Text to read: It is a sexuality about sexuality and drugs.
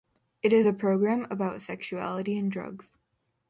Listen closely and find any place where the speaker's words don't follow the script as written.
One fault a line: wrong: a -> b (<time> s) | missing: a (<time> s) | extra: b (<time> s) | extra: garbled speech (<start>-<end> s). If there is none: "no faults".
wrong: sexuality -> program (0.7 s)